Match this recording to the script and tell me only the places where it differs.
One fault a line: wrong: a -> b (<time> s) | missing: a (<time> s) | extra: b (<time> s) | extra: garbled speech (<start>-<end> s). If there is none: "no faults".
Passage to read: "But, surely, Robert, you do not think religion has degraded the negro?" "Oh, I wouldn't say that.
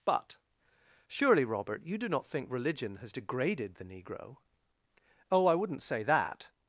no faults